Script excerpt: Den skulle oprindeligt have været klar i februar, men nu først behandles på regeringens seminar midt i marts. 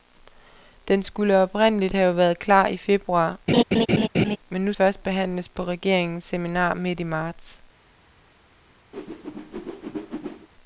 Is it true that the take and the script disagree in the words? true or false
false